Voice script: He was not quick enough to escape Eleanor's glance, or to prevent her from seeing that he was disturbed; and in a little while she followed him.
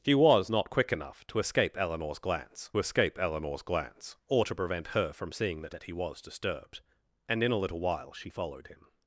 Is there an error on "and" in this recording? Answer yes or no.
no